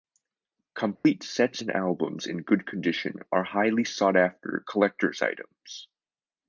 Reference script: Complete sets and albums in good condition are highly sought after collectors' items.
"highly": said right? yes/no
yes